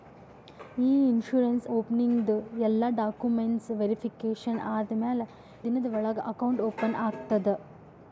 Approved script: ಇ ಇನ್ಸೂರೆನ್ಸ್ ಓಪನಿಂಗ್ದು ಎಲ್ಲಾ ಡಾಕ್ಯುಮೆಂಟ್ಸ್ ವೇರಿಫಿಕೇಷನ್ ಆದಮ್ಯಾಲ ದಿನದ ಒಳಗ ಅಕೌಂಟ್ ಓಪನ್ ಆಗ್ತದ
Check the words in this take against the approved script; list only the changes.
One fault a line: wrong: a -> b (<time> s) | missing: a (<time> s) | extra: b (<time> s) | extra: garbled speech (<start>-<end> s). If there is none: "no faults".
no faults